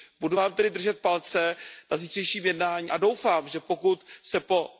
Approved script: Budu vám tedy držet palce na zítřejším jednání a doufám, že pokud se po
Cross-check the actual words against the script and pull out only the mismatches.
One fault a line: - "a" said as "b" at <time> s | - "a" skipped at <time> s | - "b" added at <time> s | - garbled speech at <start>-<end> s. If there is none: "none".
none